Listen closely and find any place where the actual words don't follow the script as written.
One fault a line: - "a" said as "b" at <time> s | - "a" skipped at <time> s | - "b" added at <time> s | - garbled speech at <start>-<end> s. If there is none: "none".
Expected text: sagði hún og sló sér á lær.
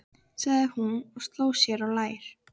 none